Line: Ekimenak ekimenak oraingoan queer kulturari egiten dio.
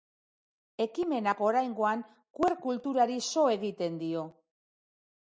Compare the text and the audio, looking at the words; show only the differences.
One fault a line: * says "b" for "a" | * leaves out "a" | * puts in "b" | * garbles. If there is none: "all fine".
* leaves out "ekimenak"
* puts in "so"